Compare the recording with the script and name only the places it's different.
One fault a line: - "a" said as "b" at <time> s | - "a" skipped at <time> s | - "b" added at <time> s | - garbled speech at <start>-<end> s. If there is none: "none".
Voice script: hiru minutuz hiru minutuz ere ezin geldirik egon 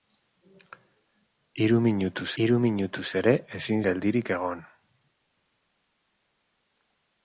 none